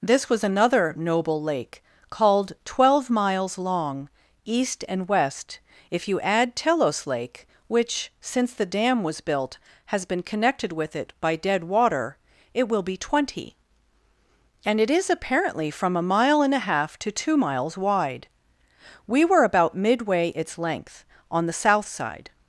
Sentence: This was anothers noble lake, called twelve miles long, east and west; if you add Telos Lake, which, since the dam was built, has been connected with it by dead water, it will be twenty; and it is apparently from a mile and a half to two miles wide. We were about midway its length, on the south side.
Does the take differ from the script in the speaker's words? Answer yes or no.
yes